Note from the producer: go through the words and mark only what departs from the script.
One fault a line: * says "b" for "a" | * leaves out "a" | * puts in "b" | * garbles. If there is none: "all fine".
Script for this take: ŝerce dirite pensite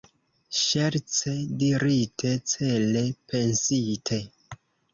* puts in "cele"